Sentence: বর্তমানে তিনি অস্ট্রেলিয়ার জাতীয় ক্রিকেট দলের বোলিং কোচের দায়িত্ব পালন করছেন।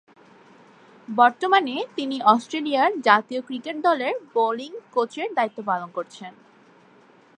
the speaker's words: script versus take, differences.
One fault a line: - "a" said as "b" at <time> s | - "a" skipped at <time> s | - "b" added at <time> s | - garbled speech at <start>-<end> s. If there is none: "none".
none